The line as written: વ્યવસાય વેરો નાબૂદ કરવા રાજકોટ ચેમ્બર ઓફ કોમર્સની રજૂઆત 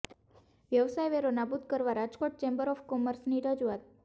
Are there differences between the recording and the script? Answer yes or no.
no